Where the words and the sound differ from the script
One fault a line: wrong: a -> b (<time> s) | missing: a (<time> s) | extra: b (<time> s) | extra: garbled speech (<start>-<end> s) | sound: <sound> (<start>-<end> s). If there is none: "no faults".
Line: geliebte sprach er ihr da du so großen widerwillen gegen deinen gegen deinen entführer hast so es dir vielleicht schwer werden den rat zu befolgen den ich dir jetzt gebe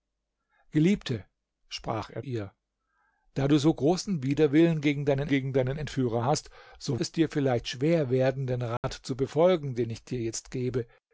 sound: dropout (8.8-8.8 s)